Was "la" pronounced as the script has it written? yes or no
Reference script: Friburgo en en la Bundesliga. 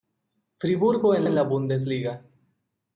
yes